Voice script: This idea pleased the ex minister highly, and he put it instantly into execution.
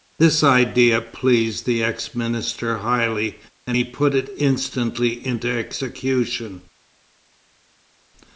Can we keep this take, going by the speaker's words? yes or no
yes